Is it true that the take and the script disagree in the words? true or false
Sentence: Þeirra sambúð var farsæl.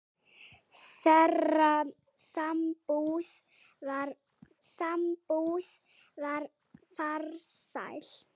true